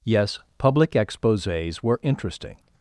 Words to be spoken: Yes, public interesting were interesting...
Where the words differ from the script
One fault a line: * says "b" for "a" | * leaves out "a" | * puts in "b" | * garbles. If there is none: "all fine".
* says "exposés" for "interesting"